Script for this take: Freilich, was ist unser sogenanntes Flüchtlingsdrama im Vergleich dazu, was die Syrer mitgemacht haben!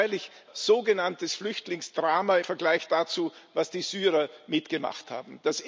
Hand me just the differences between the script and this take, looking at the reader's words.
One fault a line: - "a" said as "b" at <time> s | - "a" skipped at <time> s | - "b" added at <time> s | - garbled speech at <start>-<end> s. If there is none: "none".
- "was ist unser" skipped at 0.3 s
- "im" skipped at 2.4 s